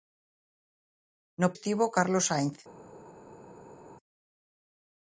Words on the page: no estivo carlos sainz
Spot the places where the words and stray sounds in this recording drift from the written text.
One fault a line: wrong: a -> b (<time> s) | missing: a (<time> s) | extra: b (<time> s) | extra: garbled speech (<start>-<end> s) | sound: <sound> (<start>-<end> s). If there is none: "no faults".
no faults